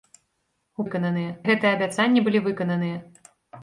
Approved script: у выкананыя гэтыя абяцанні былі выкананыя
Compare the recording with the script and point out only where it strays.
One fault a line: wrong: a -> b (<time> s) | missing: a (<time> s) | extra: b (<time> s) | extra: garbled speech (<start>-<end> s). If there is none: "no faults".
no faults